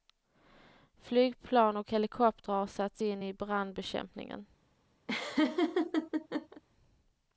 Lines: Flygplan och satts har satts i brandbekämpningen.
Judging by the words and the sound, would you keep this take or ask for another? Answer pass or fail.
fail